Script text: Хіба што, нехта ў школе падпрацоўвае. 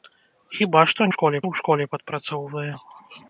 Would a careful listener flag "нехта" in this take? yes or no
yes